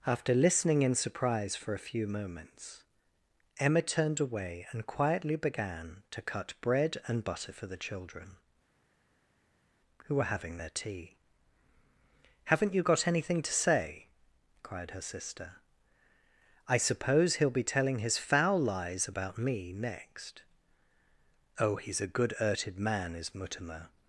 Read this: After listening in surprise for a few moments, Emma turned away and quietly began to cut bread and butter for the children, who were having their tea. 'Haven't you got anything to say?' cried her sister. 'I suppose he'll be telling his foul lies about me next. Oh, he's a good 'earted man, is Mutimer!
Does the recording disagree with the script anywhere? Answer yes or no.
no